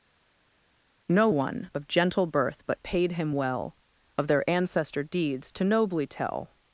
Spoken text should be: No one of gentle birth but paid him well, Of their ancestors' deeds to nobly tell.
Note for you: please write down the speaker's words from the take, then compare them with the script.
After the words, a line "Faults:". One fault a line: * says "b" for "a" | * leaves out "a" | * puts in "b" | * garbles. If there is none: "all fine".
No one of gentle birth but paid him well, Of their ancestor' deeds to nobly tell.
Faults:
* says "ancestor" for "ancestors"